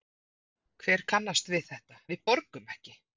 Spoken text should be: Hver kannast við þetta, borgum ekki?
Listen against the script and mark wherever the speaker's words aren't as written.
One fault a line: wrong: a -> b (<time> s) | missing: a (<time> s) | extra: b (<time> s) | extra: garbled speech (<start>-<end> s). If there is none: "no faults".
extra: við (2.1 s)